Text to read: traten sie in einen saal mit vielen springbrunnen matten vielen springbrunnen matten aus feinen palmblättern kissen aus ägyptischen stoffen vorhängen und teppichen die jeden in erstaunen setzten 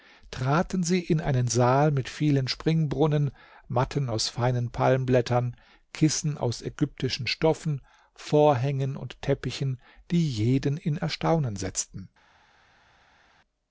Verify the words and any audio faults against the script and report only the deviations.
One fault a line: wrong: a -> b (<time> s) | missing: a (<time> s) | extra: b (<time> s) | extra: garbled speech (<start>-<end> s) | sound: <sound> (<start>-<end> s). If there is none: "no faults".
missing: vielen springbrunnen matten (4.1 s)